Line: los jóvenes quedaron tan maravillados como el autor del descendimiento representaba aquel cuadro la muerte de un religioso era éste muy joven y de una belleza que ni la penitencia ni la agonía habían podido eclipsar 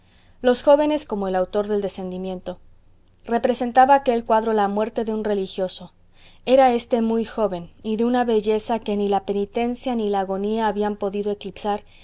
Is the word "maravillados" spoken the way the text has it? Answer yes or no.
no